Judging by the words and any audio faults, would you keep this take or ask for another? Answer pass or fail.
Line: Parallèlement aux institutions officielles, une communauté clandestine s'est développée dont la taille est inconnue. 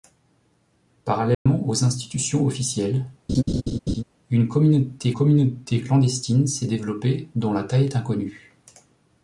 fail